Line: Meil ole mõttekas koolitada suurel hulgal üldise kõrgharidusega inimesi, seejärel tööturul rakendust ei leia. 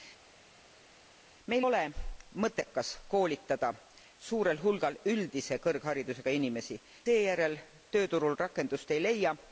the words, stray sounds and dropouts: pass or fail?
pass